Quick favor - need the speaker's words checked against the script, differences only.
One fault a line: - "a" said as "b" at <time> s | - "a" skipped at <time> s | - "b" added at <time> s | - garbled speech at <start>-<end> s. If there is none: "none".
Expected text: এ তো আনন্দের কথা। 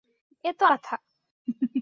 - "আনন্দের" skipped at 0.7 s